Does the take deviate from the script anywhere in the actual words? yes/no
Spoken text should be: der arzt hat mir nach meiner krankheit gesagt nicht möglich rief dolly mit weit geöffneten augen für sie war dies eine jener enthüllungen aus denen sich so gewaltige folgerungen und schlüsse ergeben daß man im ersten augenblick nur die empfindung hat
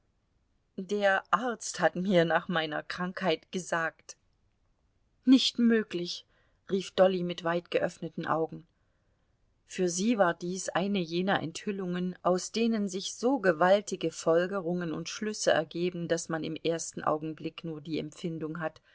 no